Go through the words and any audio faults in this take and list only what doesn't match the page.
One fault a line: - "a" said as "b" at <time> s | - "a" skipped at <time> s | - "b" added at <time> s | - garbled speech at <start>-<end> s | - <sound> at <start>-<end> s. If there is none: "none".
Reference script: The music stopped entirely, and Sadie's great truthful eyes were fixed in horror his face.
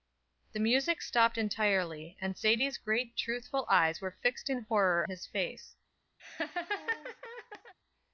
- laugh at 6.2-7.7 s